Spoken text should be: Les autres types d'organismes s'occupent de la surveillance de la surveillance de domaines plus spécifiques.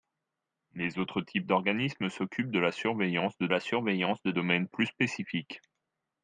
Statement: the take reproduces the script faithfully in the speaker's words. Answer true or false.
true